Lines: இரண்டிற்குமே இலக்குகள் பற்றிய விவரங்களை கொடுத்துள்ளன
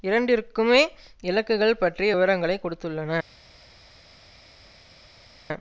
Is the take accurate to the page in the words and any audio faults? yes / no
yes